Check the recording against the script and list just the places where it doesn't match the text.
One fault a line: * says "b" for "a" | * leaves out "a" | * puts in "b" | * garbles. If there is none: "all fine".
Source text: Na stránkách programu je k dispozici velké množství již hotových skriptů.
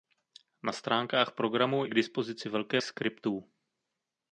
* leaves out "je"
* leaves out "množství již hotových"